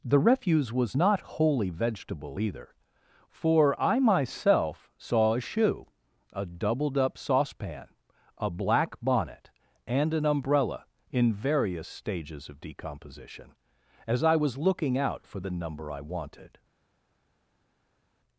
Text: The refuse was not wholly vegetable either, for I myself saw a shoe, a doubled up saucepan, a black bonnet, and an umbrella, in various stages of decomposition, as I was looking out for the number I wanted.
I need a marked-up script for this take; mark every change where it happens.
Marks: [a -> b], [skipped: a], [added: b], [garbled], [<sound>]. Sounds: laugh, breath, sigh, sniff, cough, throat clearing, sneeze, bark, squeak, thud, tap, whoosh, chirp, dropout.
The refuse was not wholly vegetable either, for I myself saw a shoe, a doubled up saucepan, a black bonnet, and an umbrella, in various stages of decomposition, as I was looking out for the number I wanted.